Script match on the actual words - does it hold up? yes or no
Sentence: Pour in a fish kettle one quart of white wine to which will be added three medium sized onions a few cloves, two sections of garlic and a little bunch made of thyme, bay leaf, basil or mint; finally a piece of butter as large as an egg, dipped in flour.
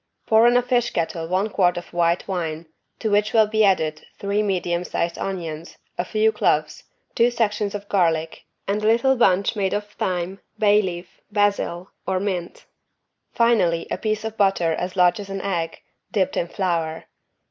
yes